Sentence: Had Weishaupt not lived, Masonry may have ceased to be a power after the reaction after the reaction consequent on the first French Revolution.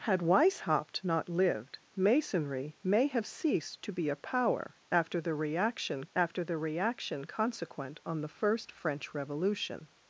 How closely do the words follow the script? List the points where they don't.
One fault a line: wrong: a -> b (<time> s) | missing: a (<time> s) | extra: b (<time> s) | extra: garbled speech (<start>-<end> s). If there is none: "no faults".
no faults